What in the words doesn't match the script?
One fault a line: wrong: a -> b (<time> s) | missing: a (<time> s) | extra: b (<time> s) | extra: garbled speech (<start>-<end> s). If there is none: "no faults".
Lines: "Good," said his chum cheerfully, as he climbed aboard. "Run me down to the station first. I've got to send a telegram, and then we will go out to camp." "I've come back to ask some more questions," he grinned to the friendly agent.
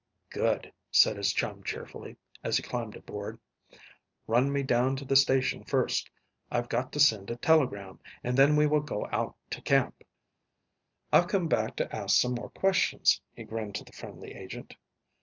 no faults